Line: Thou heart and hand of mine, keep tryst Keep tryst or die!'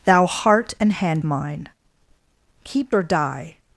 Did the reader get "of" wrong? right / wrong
wrong